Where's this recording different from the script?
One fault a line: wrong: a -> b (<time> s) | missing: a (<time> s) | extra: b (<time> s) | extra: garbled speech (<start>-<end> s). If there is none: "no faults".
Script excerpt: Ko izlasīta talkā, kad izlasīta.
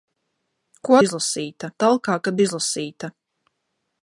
no faults